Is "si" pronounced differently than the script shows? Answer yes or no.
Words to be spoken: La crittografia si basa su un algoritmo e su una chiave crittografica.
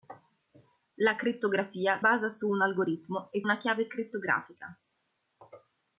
yes